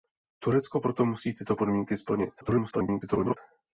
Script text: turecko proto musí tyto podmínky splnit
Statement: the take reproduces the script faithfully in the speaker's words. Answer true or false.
false